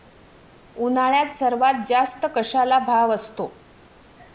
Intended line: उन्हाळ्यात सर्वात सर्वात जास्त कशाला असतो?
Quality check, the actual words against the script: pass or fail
fail